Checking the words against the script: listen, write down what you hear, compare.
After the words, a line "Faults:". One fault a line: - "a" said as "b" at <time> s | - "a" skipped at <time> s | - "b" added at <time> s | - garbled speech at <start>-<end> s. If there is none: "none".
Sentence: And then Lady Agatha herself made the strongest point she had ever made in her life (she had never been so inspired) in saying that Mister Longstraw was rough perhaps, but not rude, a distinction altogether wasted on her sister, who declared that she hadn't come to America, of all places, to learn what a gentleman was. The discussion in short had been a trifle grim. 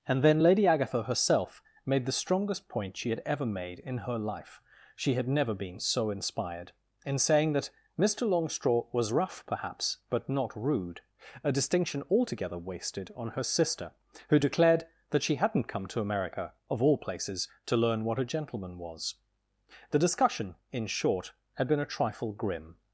And then Lady Agatha herself made the strongest point she had ever made in her life (she had never been so inspired) in saying that Mister Longstraw was rough perhaps, but not rude, a distinction altogether wasted on her sister, who declared that she hadn't come to America, of all places, to learn what a gentleman was. The discussion in short had been a trifle grim.
Faults:
none